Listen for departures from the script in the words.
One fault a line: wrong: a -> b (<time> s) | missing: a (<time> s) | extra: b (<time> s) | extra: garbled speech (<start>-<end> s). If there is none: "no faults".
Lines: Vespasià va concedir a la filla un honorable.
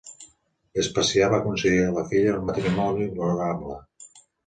extra: matrimoni (2.5 s)